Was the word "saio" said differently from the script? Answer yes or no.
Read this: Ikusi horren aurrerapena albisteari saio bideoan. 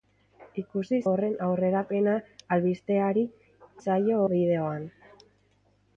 no